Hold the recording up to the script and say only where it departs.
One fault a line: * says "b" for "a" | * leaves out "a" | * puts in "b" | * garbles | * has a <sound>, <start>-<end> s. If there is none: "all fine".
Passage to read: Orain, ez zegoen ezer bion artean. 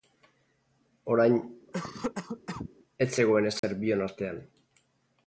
* has a cough, 1.7-2.7 s
* has a dropout, 3.6-3.6 s